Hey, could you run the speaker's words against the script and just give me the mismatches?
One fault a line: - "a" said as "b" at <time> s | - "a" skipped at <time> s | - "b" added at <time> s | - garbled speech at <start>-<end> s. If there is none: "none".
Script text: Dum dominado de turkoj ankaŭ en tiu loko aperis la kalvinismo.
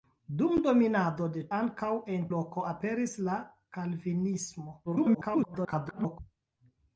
- "turkoj" skipped at 1.4 s
- "tiu" skipped at 2.3 s
- garbled speech at 4.9-6.2 s